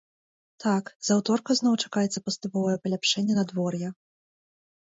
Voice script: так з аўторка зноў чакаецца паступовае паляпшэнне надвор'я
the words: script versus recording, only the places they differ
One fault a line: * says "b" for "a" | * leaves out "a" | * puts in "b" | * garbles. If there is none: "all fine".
all fine